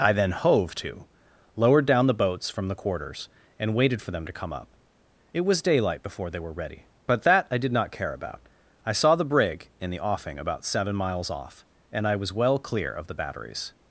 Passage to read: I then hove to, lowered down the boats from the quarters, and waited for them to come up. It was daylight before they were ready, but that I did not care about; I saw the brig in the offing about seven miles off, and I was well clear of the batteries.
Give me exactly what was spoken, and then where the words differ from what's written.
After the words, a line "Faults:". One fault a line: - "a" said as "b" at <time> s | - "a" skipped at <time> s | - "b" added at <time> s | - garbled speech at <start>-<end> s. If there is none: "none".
I then hove to, lowered down the boats from the quarters, and waited for them to come up. It was daylight before they were ready, but that I did not care about; I saw the brig in the offing about seven miles off, and I was well clear of the batteries.
Faults:
none